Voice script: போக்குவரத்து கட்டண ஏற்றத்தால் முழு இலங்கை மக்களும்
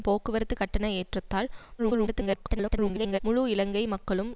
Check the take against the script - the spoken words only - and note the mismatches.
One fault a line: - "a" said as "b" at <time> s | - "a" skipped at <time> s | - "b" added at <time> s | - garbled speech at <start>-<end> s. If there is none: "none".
- garbled speech at 1.8-3.2 s